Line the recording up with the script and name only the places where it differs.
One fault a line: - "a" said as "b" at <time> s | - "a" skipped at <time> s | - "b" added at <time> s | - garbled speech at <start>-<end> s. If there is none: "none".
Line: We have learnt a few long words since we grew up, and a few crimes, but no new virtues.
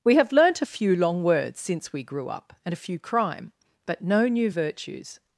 - "crimes" said as "crime" at 3.0 s